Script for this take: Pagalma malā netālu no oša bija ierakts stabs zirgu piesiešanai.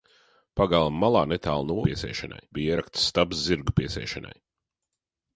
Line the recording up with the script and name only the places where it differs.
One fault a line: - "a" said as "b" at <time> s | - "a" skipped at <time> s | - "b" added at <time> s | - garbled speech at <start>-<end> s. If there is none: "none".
- "oša" said as "piesiešanai" at 1.9 s